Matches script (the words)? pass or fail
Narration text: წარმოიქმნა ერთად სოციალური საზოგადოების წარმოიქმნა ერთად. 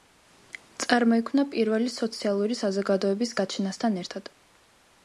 fail